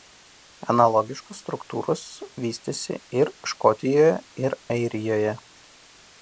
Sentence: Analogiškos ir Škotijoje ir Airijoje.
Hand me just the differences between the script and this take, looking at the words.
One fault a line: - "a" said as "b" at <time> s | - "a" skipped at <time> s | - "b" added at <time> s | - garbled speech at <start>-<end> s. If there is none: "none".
- "struktūros vystėsi" added at 1.4 s